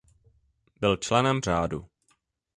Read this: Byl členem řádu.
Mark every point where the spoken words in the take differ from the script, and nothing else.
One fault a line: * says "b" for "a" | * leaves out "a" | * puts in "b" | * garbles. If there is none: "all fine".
all fine